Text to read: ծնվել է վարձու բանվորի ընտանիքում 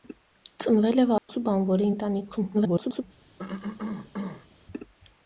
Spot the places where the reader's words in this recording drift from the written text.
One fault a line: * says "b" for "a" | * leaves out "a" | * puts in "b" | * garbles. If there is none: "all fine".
* garbles